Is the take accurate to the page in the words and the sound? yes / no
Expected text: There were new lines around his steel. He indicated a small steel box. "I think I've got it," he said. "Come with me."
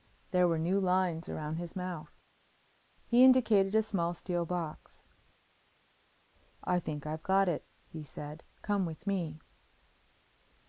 no